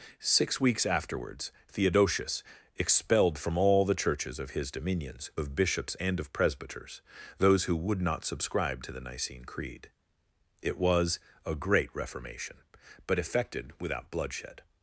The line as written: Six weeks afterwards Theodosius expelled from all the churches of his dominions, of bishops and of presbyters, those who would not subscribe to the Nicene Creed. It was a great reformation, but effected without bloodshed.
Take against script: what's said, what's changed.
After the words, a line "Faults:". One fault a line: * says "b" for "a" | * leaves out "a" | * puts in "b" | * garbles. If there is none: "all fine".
Six weeks afterwards Theodosius expelled from all the churches of his dominions, of bishops and of presbyters, those who would not subscribe to the Nicene Creed. It was a great reformation, but effected without bloodshed.
Faults:
all fine